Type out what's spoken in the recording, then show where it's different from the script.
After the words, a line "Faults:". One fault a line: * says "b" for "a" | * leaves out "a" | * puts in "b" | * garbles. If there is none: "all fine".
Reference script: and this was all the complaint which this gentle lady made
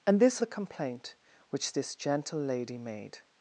and this the complaint which this gentle lady made
Faults:
* leaves out "was all"